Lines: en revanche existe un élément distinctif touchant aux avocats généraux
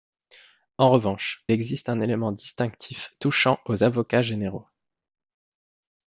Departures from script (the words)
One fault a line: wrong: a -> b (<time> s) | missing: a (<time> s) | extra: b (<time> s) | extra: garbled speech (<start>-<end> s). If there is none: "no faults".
no faults